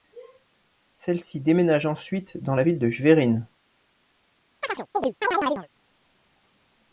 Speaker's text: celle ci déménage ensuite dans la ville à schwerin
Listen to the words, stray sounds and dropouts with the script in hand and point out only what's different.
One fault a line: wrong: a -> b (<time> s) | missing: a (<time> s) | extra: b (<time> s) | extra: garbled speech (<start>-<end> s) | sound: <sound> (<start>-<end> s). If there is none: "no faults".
wrong: à -> de (2.8 s)
sound: chirp (4.6-5.7 s)